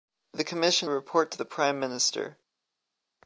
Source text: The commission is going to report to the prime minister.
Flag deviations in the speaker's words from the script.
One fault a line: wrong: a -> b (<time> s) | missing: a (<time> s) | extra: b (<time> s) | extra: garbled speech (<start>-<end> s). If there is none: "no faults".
missing: is going to (0.9 s)